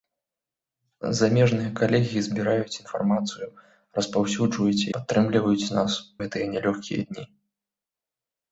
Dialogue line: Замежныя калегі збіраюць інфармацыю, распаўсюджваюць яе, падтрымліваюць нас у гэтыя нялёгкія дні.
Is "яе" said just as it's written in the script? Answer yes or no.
no